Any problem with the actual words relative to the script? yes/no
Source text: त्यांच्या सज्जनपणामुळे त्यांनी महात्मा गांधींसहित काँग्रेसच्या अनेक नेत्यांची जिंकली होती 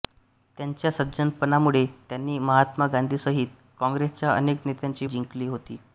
no